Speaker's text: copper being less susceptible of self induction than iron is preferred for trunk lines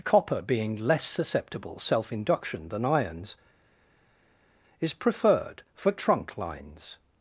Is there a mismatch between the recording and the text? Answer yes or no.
yes